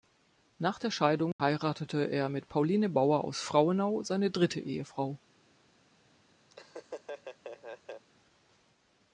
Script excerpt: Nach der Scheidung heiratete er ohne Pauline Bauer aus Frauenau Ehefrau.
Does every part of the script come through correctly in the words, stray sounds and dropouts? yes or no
no